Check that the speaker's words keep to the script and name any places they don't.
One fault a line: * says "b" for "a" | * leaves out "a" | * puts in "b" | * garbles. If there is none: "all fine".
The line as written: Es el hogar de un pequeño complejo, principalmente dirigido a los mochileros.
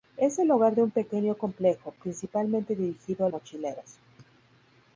* leaves out "los"